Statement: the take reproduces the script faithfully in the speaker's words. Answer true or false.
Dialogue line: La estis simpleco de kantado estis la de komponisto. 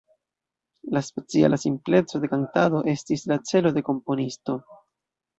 false